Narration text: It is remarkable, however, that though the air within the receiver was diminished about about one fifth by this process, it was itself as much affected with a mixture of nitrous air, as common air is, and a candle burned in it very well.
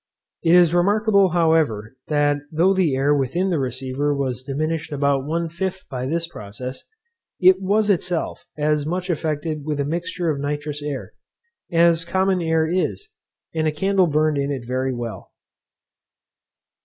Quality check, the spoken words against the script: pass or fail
fail